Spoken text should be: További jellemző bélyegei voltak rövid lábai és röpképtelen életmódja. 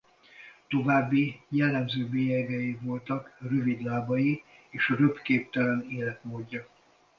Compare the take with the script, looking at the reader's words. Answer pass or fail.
pass